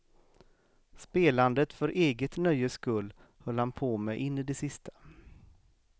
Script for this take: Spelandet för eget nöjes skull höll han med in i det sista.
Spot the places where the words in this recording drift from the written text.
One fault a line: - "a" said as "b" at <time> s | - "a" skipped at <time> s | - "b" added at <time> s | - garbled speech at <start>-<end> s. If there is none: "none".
- "på" added at 3.7 s